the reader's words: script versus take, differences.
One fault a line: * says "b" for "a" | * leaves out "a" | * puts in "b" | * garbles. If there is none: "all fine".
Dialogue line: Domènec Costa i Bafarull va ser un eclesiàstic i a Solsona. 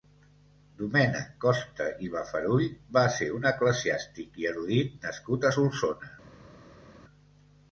* puts in "erudit nascut"